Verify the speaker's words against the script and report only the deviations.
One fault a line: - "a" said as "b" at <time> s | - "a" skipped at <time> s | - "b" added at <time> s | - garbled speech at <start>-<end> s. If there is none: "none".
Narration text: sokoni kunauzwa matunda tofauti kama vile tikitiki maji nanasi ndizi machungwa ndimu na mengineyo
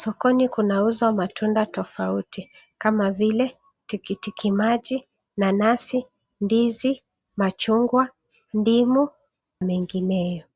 - "na" skipped at 9.1 s